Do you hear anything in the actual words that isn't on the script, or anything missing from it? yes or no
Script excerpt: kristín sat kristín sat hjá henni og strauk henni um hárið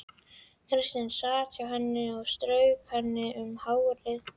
yes